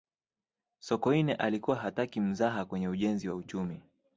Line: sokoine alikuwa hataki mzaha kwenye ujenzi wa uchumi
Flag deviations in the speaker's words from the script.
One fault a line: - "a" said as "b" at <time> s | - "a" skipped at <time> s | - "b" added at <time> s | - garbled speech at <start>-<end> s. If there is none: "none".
none